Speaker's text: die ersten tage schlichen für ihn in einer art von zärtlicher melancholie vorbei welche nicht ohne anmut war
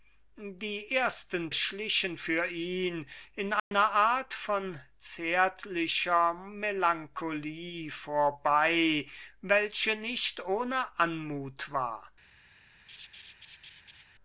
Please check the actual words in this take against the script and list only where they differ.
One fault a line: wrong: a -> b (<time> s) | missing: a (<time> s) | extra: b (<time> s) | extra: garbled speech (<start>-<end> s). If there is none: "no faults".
missing: tage (1.5 s)